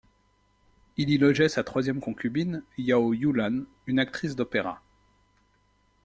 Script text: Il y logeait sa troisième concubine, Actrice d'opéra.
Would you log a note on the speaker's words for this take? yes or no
yes